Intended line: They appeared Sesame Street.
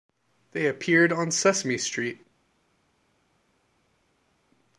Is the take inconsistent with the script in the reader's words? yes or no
yes